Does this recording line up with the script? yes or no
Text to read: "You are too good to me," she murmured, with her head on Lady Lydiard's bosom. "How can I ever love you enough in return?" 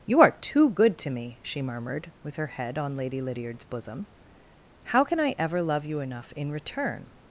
yes